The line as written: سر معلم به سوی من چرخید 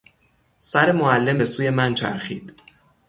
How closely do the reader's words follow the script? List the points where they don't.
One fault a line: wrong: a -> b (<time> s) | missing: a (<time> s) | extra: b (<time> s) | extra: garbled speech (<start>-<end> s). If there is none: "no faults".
no faults